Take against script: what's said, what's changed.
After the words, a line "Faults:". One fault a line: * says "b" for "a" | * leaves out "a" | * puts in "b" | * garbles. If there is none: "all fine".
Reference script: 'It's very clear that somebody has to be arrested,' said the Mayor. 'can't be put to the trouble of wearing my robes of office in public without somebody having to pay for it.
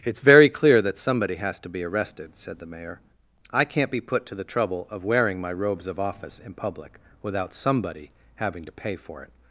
'It's very clear that somebody has to be arrested,' said the Mayor. 'I can't be put to the trouble of wearing my robes of office in public without somebody having to pay for it.
Faults:
* puts in "I"